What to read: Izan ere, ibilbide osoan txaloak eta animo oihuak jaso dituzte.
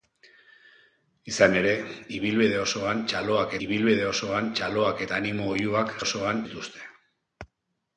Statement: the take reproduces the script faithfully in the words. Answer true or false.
false